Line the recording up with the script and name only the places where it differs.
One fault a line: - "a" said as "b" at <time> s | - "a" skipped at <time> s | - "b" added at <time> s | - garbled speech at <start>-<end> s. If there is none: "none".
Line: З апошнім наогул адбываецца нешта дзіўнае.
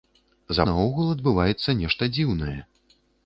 - "апошнім" skipped at 0.6 s